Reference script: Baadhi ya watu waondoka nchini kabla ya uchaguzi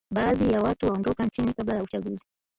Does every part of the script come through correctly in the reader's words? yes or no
yes